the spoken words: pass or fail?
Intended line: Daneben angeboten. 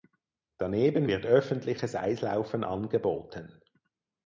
fail